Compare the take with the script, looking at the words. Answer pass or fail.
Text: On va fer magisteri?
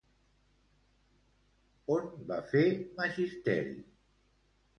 pass